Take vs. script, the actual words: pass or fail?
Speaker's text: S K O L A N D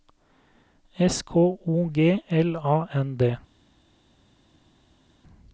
fail